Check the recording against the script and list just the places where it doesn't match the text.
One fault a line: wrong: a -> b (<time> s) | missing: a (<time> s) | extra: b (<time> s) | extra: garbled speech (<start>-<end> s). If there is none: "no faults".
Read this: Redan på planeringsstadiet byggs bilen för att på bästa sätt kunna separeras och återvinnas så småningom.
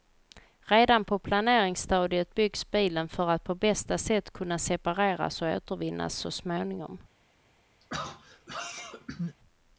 no faults